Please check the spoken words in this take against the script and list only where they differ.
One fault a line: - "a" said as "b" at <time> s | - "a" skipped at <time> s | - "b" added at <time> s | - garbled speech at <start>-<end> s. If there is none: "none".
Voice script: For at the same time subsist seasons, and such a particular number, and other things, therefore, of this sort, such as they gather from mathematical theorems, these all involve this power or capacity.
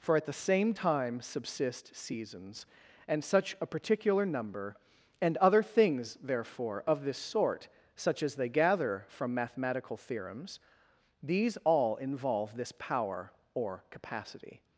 none